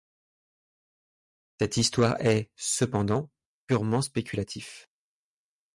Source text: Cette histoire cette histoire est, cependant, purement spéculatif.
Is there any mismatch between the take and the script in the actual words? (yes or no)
yes